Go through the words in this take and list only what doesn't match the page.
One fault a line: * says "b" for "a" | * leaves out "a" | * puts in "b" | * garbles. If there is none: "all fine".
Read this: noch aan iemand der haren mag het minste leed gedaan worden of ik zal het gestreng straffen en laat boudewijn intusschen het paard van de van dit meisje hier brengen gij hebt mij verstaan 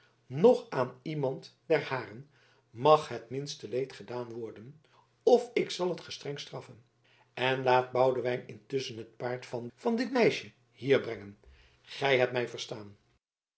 * leaves out "de"